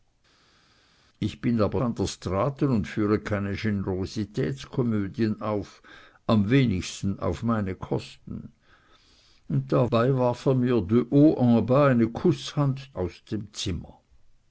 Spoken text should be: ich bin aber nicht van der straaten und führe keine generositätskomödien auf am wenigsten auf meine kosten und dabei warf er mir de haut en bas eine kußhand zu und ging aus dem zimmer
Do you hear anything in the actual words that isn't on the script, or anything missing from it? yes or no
yes